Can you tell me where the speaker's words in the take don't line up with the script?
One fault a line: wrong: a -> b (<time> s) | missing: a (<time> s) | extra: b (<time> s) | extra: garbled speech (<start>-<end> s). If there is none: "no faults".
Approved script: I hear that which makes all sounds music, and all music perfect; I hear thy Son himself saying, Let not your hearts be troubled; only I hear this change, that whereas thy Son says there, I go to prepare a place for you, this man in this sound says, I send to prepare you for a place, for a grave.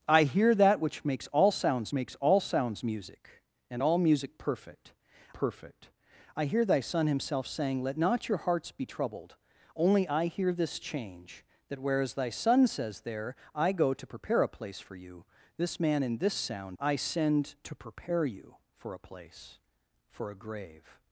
extra: makes all sounds (1.9 s)
extra: perfect (5.3 s)
missing: says (16.8 s)